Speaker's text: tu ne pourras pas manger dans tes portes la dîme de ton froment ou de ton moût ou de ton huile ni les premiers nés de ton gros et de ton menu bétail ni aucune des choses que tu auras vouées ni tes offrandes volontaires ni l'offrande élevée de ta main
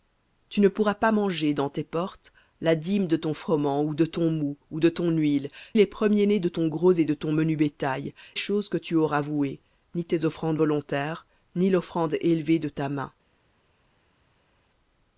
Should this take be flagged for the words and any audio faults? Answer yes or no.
yes